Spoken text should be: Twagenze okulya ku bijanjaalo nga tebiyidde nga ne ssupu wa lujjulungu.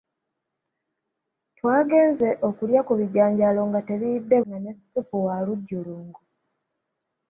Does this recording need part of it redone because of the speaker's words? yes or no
no